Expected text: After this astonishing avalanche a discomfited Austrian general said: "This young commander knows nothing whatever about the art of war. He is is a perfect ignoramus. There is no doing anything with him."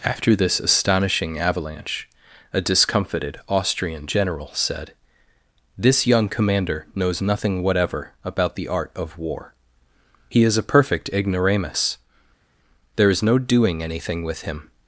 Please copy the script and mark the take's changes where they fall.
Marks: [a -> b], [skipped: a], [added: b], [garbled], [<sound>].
After this astonishing avalanche a discomfited Austrian general said: "This young commander knows nothing whatever about the art of war. He is [skipped: is] a perfect ignoramus. There is no doing anything with him."